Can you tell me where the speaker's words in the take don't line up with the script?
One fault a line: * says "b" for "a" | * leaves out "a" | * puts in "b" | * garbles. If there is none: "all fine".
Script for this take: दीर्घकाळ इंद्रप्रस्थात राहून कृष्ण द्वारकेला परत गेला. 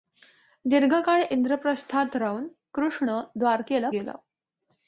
* leaves out "परत"